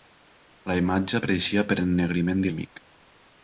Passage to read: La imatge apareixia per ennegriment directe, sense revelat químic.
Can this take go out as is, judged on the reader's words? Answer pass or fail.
fail